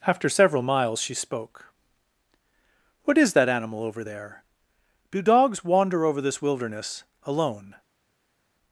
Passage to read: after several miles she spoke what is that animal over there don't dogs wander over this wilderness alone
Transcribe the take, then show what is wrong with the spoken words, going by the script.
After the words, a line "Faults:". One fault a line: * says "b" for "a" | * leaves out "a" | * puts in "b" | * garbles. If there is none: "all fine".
after several miles she spoke what is that animal over there do dogs wander over this wilderness alone
Faults:
* says "do" for "don't"